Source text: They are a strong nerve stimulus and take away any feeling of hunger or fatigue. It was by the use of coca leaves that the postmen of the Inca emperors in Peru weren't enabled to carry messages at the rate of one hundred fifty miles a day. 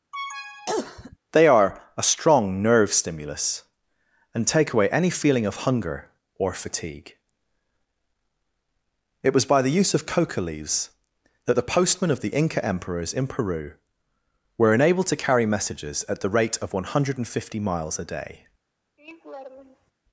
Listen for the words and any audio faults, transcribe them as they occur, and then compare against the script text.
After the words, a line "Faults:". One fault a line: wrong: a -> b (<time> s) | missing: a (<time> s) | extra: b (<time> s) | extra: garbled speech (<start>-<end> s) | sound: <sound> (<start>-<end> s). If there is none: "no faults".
They are a strong nerve stimulus and take away any feeling of hunger or fatigue. It was by the use of coca leaves that the postmen of the Inca emperors in Peru were enabled to carry messages at the rate of one hundred fifty miles a day.
Faults:
sound: cough (0.1-1.2 s)
wrong: weren't -> were (14.6 s)
sound: laugh (19.0-19.9 s)